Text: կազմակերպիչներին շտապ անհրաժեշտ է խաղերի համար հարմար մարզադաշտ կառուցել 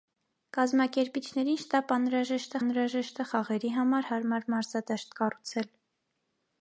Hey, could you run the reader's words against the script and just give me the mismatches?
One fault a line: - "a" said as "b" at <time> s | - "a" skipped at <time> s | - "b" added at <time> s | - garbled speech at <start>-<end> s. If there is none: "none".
- "անհրաժեշտ" added at 2.6 s